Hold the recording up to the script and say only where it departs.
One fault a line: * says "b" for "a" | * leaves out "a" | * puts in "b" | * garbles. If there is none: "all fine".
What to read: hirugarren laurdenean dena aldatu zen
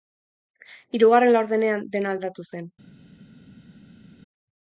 all fine